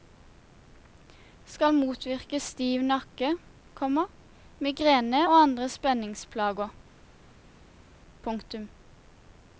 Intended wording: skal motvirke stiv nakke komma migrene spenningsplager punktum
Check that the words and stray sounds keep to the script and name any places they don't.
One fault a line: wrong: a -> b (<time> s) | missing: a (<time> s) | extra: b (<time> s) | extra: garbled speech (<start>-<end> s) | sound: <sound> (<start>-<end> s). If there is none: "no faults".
extra: og andre (5.2 s)